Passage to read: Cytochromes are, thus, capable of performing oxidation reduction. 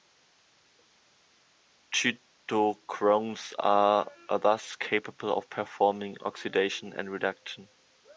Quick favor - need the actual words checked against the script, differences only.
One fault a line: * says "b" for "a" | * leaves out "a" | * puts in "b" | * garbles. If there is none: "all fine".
* puts in "and"